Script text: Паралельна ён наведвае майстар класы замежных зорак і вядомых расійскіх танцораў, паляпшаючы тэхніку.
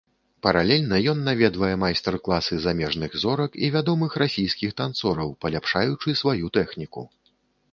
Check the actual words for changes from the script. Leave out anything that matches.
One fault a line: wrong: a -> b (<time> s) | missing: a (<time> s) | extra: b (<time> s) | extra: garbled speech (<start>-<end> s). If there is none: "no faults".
extra: сваю (6.2 s)